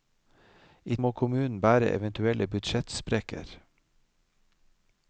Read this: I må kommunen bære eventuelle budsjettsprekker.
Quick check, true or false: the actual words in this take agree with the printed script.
true